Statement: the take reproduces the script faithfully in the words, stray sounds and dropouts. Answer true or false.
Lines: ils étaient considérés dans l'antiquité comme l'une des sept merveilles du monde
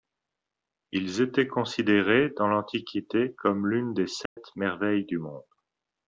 false